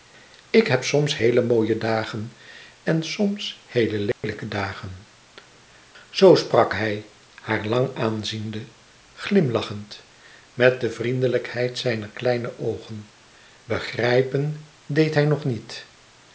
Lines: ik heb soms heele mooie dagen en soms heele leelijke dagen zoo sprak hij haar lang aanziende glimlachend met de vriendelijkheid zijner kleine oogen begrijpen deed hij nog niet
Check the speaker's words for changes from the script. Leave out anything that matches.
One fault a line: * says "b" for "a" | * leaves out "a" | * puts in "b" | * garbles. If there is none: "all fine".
all fine